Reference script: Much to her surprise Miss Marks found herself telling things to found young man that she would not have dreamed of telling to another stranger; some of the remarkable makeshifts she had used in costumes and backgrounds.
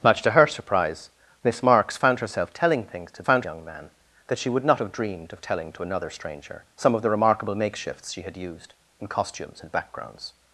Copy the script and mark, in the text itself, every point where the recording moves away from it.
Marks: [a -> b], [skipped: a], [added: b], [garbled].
Much to her surprise Miss Marks found herself telling things to found young man that she would not have dreamed of telling to another stranger; some of the remarkable makeshifts she had used in costumes and backgrounds.